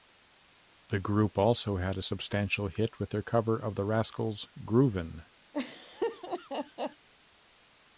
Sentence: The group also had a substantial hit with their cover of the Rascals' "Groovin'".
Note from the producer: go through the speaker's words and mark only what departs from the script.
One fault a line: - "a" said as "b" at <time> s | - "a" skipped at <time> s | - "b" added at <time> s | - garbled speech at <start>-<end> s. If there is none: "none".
none